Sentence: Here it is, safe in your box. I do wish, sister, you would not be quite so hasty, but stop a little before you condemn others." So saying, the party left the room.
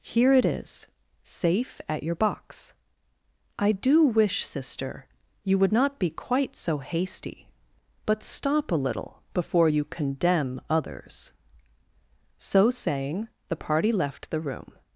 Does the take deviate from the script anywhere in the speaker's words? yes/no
yes